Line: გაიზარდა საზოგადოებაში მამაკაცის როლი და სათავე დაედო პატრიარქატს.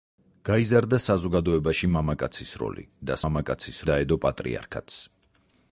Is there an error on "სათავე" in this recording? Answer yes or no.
yes